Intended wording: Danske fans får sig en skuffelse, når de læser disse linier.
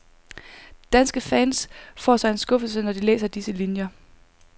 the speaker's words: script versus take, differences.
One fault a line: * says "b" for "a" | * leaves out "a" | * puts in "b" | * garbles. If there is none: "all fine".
all fine